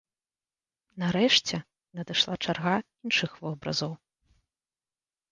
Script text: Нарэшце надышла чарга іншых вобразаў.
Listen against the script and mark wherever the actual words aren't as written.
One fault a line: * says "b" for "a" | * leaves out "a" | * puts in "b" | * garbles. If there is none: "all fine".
all fine